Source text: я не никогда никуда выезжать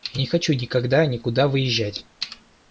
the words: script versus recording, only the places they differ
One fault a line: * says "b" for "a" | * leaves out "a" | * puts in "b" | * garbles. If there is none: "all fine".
* puts in "хочу"